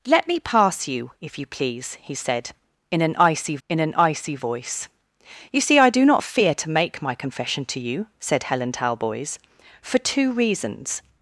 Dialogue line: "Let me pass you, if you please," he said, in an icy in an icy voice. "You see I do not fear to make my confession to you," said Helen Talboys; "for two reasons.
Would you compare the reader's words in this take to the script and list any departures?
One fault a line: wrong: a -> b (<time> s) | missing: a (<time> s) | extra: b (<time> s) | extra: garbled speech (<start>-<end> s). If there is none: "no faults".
no faults